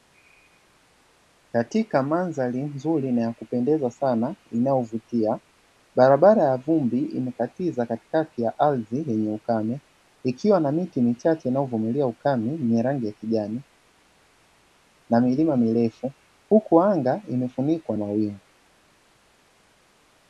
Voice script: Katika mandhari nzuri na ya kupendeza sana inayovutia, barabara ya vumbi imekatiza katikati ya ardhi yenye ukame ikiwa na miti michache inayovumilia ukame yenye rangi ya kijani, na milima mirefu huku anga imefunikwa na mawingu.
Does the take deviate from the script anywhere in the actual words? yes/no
yes